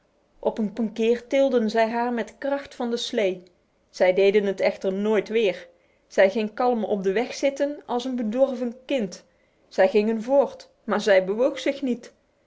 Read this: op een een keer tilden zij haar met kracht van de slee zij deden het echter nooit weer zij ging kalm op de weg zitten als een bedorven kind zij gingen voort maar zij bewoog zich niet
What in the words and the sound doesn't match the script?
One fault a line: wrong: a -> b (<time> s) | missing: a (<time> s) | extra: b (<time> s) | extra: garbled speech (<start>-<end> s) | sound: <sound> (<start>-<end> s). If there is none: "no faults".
no faults